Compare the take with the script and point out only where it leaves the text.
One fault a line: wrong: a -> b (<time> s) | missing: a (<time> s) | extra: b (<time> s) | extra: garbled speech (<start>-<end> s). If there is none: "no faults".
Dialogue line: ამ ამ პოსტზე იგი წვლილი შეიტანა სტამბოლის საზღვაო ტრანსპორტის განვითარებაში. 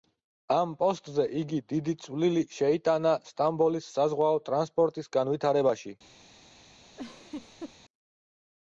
missing: ამ (0.7 s)
extra: დიდი (1.7 s)